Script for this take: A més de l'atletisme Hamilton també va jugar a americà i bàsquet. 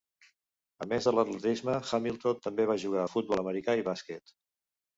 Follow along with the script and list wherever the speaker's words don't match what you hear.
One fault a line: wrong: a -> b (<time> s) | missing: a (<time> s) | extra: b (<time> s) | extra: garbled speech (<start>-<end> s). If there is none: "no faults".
extra: futbol (3.2 s)